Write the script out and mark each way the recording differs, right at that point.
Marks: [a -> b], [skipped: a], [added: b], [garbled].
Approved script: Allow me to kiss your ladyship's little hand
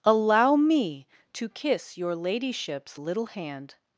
Allow me to kiss your ladyship's little hand